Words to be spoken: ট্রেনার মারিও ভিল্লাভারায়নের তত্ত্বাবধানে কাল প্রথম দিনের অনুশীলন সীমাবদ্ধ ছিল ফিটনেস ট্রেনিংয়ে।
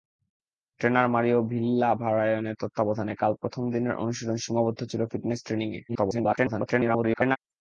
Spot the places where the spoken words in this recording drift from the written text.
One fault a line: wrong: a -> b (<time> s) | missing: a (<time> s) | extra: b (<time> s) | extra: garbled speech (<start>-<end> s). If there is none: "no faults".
extra: garbled speech (5.9-7.4 s)